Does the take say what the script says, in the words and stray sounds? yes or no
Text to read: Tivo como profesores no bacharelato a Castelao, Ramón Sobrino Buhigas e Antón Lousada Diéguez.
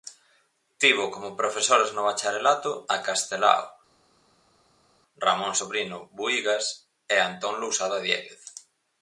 yes